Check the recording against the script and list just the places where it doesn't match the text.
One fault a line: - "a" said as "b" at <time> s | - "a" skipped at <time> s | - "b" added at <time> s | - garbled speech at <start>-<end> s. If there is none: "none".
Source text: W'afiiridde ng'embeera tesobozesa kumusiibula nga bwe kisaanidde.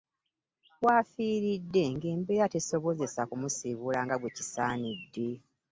none